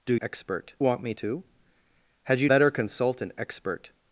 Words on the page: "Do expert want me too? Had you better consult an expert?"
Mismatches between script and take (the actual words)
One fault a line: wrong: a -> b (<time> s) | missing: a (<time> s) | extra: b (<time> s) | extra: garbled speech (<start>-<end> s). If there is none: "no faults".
no faults